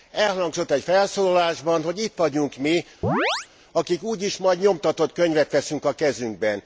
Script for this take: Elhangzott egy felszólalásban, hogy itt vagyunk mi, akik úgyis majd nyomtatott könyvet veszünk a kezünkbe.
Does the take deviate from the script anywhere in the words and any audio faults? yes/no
yes